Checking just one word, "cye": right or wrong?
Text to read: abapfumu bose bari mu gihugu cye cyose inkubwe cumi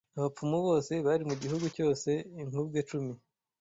wrong